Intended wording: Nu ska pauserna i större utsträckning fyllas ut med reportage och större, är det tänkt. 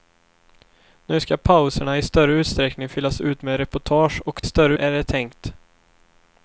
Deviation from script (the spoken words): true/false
false